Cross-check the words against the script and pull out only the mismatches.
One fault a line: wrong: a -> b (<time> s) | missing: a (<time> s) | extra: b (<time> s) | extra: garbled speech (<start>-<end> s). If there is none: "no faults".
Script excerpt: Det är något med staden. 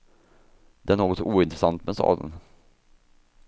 extra: ointressant (1.2 s)